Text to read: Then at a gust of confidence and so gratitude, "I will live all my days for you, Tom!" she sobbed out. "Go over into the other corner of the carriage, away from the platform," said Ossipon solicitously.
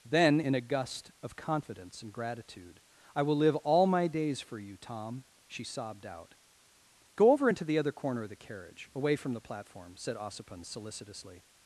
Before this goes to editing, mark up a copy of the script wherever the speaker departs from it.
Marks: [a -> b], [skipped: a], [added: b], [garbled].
Then [at -> in] a gust of confidence and [skipped: so] gratitude, "I will live all my days for you, Tom!" she sobbed out. "Go over into the other corner of the carriage, away from the platform," said Ossipon solicitously.